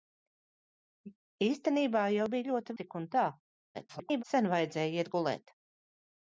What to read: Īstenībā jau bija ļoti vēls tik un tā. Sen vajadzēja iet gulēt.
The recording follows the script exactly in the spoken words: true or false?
false